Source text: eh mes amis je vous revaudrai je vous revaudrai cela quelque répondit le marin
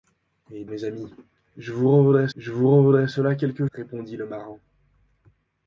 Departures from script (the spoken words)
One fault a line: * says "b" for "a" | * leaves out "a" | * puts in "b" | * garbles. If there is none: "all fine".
all fine